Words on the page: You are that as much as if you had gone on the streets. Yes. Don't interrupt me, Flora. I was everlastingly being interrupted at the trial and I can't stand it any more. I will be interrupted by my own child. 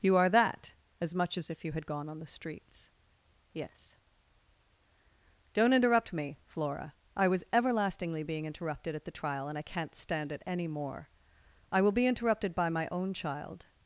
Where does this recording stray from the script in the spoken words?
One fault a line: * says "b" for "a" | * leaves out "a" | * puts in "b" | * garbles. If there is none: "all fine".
all fine